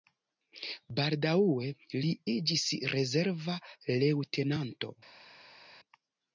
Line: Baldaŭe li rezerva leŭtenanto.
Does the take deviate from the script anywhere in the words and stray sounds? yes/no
yes